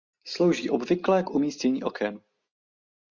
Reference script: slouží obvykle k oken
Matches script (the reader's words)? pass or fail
fail